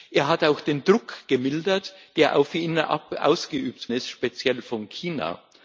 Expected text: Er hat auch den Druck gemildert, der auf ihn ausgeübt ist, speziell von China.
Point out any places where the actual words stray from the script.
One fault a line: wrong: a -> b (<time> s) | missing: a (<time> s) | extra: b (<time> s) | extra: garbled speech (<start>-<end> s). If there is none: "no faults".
no faults